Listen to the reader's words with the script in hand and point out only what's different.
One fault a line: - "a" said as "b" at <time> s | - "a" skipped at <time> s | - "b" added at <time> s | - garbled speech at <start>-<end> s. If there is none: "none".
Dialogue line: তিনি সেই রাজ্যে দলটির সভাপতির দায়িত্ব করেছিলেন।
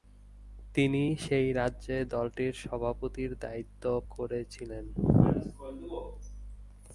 none